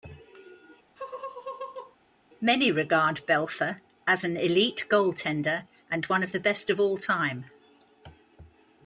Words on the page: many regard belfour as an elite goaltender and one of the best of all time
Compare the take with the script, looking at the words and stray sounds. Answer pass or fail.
fail